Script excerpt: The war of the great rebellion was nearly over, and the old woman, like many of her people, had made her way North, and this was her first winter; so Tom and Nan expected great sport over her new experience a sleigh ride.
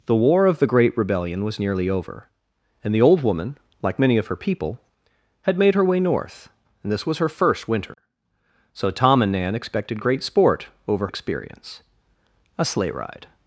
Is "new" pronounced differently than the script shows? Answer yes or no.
yes